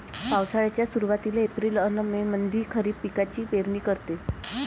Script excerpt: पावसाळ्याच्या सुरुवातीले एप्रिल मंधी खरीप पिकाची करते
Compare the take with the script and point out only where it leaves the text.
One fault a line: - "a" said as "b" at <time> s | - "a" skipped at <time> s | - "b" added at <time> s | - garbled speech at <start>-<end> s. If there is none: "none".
- "अन मे" added at 1.8 s
- "पेरनी" added at 3.5 s